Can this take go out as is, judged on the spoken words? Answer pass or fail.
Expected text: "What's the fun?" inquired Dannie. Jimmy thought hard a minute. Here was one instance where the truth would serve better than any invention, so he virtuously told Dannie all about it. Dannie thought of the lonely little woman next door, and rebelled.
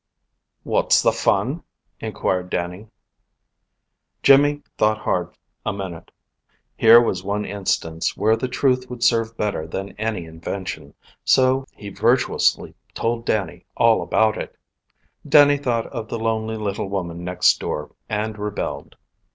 pass